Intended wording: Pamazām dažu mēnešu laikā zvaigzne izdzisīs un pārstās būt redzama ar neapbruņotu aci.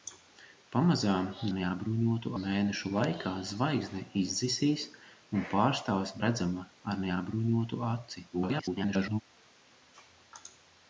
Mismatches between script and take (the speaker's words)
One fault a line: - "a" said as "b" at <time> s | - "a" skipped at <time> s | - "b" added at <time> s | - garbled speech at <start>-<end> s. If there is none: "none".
- "dažu" said as "neapbruņotu" at 1.6 s
- "būt" skipped at 6.1 s
- garbled speech at 8.3-9.2 s